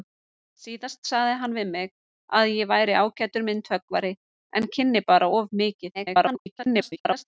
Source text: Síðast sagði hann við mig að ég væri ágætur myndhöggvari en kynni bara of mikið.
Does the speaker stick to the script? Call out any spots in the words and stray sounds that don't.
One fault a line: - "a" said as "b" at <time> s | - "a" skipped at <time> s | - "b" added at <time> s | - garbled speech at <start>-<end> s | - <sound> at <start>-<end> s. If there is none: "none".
- garbled speech at 5.9-7.2 s